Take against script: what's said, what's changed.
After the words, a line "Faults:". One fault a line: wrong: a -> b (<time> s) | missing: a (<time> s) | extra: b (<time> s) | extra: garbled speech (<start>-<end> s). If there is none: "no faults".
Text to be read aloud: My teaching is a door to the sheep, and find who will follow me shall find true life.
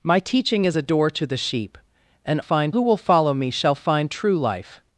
My teaching is a door to the sheep, and find who will follow me shall find true life.
Faults:
no faults